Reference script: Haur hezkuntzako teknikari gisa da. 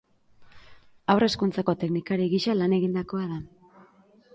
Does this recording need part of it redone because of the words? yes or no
yes